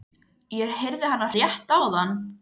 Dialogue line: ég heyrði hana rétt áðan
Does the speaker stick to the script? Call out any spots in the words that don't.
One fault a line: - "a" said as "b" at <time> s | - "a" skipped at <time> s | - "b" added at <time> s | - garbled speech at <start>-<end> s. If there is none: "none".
none